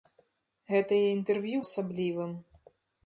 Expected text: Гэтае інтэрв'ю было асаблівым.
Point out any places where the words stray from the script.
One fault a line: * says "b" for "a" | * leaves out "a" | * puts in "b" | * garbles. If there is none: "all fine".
* leaves out "было"